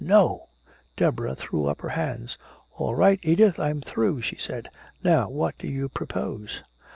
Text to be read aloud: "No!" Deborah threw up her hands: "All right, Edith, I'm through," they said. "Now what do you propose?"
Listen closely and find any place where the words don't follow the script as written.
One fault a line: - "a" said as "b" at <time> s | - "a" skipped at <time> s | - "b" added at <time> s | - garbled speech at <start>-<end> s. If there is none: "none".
- "they" said as "she" at 4.2 s